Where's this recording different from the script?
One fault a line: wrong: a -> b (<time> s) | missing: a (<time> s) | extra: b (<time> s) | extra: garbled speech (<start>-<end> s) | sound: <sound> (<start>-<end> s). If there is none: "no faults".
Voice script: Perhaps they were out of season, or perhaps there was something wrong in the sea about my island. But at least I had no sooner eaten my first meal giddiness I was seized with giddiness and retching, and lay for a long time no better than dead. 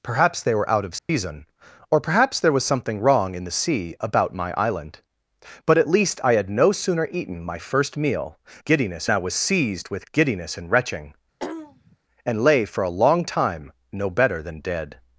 sound: dropout (1.0-1.1 s)
sound: throat clearing (11.4-12.0 s)